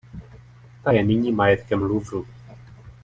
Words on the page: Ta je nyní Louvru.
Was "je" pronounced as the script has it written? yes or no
yes